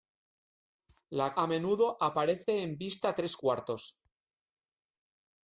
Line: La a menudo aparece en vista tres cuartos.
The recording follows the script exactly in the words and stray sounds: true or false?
true